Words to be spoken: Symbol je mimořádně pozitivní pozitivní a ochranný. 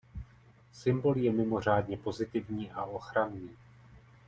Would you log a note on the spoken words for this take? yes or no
yes